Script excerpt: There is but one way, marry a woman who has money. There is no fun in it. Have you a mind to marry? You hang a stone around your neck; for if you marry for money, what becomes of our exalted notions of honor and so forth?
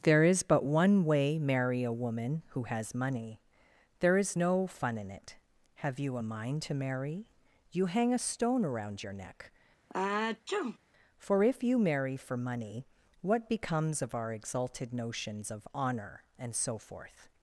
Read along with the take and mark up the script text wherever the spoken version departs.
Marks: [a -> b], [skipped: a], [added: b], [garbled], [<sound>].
There is but one way, marry a woman who has money. There is no fun in it. Have you a mind to marry? You hang a stone around your neck; [sneeze] for if you marry for money, what becomes of our exalted notions of honor and so forth?